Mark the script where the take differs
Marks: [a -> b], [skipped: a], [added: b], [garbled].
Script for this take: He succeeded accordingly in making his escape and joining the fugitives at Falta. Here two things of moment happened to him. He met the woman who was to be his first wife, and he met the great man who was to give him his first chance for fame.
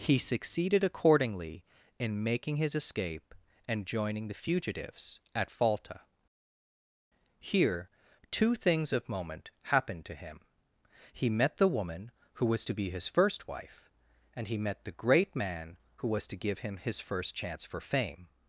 He succeeded accordingly in making his escape and joining the fugitives at Falta. Here two things of moment happened to him. He met the woman who was to be his first wife, and he met the great man who was to give him his first chance for fame.